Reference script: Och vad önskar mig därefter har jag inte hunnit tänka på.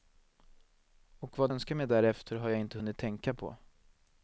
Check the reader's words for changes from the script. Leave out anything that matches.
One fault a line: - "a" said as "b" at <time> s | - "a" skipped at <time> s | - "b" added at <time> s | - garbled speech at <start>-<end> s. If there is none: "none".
none